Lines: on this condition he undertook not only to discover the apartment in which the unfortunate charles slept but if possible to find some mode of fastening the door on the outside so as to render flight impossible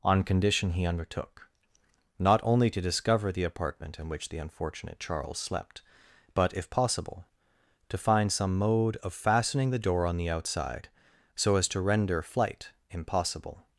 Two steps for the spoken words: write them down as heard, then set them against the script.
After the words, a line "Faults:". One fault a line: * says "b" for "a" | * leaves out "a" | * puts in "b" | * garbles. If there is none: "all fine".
on condition he undertook not only to discover the apartment in which the unfortunate charles slept but if possible to find some mode of fastening the door on the outside so as to render flight impossible
Faults:
* leaves out "this"